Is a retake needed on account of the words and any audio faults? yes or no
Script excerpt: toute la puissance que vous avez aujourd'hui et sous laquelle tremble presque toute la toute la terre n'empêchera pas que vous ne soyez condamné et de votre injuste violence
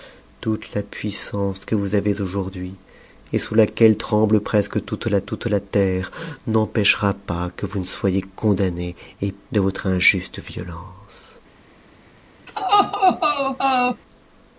yes